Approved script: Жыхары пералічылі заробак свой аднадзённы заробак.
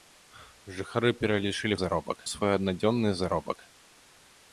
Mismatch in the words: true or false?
false